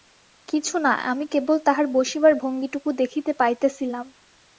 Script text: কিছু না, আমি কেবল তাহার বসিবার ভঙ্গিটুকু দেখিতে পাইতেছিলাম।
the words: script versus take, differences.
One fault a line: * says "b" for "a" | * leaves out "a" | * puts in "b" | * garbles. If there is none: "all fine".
all fine